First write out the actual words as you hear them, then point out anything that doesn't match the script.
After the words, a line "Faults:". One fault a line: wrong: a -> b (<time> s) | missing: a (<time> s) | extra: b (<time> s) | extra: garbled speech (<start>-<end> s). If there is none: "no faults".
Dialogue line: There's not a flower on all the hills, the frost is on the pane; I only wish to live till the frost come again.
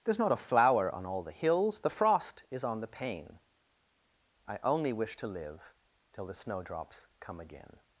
There's not a flower on all the hills, the frost is on the pane; I only wish to live till the snowdrops come again.
Faults:
wrong: frost -> snowdrops (6.3 s)